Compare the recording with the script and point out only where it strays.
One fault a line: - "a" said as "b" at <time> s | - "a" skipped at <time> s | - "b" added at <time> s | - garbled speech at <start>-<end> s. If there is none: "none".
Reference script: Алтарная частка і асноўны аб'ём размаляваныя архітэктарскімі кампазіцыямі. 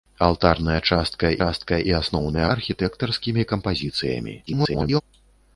- "частка" added at 1.4 s
- "аб'ём размаляваныя" skipped at 2.4 s
- garbled speech at 4.5-5.0 s